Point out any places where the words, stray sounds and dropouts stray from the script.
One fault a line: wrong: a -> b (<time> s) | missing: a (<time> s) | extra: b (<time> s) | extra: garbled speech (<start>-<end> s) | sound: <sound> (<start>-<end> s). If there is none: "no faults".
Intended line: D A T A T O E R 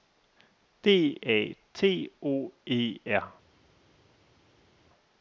missing: A T (2.1 s)